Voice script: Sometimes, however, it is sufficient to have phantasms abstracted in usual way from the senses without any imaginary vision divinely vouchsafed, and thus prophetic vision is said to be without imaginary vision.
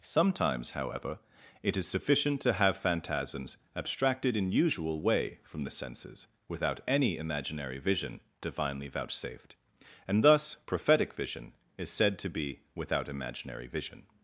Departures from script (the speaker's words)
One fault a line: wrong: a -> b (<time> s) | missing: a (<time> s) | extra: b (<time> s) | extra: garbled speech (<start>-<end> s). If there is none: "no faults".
no faults